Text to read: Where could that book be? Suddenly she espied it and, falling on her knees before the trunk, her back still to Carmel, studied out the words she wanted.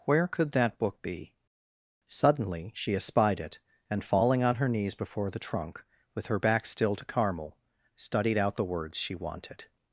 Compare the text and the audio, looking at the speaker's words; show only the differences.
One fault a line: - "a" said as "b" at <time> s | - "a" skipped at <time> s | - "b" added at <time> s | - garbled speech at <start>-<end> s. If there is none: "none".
- "with" added at 6.1 s